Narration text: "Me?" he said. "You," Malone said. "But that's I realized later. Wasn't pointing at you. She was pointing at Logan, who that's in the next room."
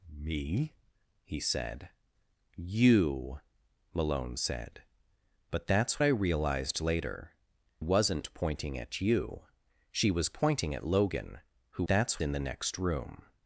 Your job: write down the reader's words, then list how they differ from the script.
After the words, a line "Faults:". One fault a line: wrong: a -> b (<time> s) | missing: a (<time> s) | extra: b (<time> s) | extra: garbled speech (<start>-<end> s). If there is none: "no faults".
"Me?" he said. "You," Malone said. "But that's I realized later. Wasn't pointing at you. She was pointing at Logan, who that's in the next room."
Faults:
no faults